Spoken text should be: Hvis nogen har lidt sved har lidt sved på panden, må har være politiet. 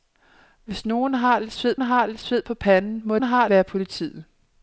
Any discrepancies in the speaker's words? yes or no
no